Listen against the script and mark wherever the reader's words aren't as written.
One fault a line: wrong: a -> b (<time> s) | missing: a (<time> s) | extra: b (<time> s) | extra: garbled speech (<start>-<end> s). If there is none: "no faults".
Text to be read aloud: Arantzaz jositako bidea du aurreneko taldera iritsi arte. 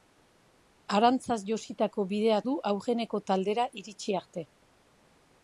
no faults